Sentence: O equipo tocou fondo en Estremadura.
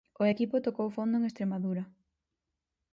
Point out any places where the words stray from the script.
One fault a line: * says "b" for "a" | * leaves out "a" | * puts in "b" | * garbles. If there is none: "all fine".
all fine